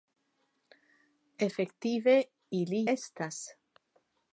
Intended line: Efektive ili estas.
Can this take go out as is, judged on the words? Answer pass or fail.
pass